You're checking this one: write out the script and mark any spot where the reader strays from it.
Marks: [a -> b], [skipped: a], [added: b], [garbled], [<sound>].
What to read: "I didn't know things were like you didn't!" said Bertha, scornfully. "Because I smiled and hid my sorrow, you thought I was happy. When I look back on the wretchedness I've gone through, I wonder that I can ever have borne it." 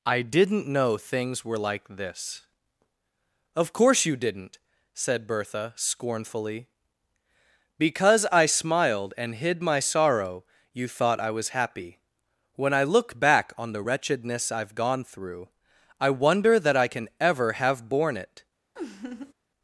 "I didn't know things were like [added: this Of course] you didn't!" said Bertha, scornfully. "Because I smiled and hid my sorrow, you thought I was happy. When I look back on the wretchedness I've gone through, I wonder that I can ever have borne it." [laugh]